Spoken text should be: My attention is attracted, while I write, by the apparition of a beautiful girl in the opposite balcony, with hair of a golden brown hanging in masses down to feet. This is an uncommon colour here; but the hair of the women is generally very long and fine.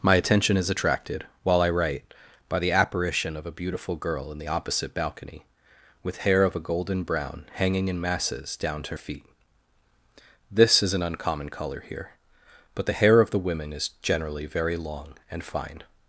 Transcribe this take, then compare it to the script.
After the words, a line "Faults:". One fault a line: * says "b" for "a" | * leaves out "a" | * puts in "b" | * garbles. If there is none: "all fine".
My attention is attracted, while I write, by the apparition of a beautiful girl in the opposite balcony, with hair of a golden brown hanging in masses down to feet. This is an uncommon colour here; but the hair of the women is generally very long and fine.
Faults:
all fine